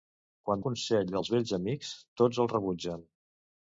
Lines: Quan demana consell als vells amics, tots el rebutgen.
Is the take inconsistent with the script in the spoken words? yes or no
yes